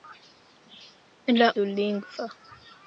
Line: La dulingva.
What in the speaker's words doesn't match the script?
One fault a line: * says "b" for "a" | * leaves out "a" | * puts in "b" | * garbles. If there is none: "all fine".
all fine